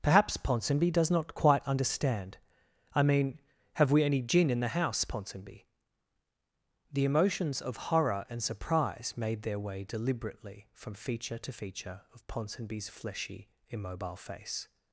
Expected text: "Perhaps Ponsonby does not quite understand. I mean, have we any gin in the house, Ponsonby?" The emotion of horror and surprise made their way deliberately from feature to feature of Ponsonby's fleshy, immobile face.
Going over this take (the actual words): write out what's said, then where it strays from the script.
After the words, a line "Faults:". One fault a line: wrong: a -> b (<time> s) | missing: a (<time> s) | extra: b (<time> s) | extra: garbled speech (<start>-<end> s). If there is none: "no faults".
"Perhaps Ponsonby does not quite understand. I mean, have we any gin in the house, Ponsonby?" The emotions of horror and surprise made their way deliberately from feature to feature of Ponsonby's fleshy, immobile face.
Faults:
wrong: emotion -> emotions (7.0 s)